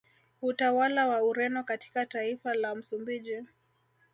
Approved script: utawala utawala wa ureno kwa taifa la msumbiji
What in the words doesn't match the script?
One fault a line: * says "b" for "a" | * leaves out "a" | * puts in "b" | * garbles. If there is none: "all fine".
* leaves out "utawala"
* says "katika" for "kwa"